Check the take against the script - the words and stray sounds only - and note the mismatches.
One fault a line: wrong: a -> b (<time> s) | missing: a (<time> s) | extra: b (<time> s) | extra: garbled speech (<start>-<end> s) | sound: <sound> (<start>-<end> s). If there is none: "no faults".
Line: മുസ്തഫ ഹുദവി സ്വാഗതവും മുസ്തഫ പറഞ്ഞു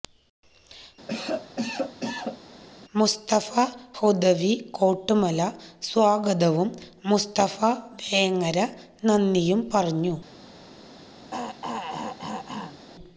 sound: cough (1.1-2.4 s)
extra: കോട്ടുമല (4.7 s)
extra: വേങ്ങര നന്ദിയും (8.0 s)
sound: throat clearing (11.3-12.9 s)